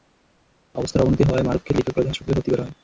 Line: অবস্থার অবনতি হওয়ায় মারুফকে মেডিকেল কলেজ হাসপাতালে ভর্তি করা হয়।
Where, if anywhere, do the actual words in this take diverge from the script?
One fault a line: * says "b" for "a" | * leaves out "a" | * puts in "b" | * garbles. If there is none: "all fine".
all fine